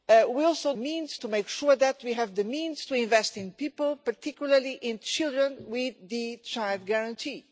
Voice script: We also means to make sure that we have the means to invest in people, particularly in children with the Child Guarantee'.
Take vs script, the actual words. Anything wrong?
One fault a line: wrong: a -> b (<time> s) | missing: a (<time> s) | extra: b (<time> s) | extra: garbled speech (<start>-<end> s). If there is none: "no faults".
no faults